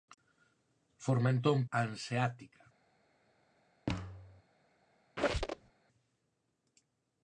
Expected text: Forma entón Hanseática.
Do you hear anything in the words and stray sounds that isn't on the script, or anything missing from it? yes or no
yes